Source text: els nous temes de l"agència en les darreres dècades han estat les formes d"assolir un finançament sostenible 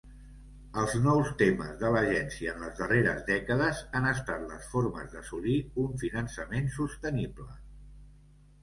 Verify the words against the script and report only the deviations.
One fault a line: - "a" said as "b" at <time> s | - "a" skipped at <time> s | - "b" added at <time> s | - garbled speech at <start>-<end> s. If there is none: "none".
none